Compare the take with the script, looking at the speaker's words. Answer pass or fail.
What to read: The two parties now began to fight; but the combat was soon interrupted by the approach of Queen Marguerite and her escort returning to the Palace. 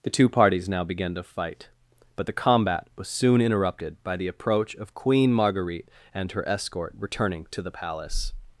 pass